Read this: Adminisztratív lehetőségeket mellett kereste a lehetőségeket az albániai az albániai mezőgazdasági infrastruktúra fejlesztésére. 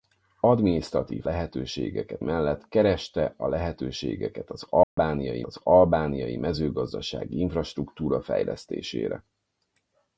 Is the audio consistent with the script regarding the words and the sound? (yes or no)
no